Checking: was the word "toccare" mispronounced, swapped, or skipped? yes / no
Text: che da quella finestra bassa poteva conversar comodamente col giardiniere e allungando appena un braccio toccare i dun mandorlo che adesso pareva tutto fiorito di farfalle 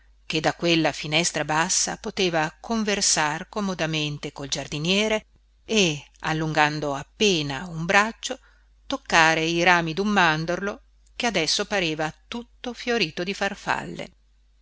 no